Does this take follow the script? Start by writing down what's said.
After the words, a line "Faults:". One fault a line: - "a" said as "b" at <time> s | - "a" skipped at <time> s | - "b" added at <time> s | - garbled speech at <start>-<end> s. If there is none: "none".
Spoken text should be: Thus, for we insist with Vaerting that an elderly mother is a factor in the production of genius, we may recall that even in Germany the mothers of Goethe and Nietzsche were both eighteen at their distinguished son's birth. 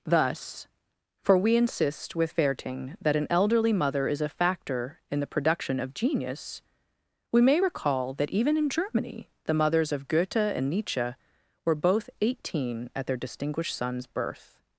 Thus, for we insist with Vaerting that an elderly mother is a factor in the production of genius, we may recall that even in Germany the mothers of Goethe and Nietzsche were both eighteen at their distinguished son's birth.
Faults:
none